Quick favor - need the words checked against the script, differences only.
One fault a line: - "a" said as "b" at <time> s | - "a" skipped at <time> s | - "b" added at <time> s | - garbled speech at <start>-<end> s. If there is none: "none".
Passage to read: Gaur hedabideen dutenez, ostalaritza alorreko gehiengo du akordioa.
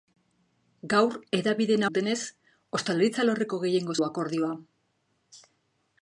none